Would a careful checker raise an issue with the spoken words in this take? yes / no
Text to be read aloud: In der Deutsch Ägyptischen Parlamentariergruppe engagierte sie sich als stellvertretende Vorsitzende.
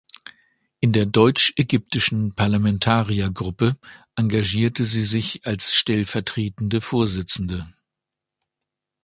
no